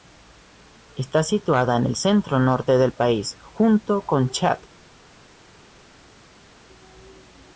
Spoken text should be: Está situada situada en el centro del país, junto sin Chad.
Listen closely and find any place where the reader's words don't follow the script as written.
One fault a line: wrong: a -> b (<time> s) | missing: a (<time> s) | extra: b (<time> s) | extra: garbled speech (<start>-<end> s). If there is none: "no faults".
missing: situada (1.8 s)
extra: norte (2.4 s)
wrong: sin -> con (4.0 s)